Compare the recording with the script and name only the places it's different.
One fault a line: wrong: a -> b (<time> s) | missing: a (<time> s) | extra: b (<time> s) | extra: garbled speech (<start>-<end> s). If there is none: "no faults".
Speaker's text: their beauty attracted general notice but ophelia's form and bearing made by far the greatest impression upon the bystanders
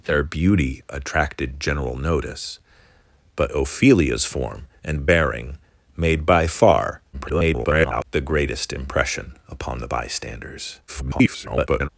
extra: garbled speech (7.1-8.0 s)
extra: garbled speech (10.9-11.9 s)